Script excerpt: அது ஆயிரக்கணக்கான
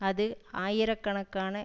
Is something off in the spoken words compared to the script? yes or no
no